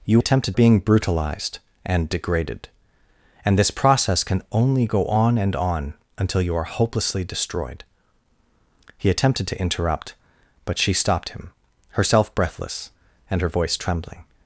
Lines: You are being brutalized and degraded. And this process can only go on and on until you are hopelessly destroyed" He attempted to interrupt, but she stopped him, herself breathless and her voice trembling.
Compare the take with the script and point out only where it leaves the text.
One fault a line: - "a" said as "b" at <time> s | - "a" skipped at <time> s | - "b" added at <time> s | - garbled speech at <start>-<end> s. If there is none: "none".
- "are" said as "attempted" at 0.2 s